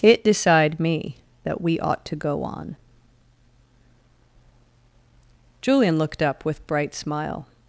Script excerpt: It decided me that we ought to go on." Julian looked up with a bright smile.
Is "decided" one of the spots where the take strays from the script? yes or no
yes